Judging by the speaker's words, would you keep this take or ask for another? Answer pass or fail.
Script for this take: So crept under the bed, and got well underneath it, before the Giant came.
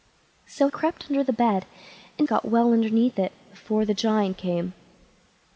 pass